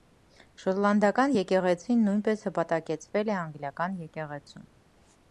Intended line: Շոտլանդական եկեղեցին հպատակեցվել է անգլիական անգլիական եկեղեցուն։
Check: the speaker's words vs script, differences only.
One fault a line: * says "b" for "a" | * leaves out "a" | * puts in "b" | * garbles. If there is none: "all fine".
* puts in "նույնպես"
* leaves out "անգլիական"